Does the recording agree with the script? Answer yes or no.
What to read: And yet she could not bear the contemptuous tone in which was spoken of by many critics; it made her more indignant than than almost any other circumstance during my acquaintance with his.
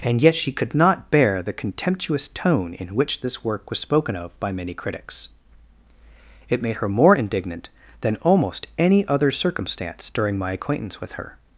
no